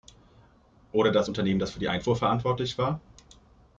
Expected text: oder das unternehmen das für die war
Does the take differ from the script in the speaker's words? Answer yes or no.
yes